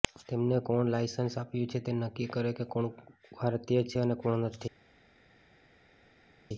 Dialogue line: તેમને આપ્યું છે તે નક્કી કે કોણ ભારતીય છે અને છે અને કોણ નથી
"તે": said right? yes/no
yes